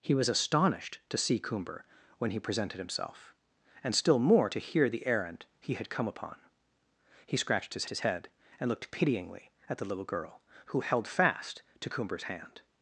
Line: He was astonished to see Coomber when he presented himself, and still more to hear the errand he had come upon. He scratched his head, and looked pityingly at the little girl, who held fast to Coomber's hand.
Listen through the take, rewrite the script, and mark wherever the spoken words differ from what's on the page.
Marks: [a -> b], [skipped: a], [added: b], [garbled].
He was astonished to see Coomber when he presented himself, and still more to hear the errand he had come upon. He scratched his [added: his] head, and looked pityingly at the little girl, who held fast to Coomber's hand.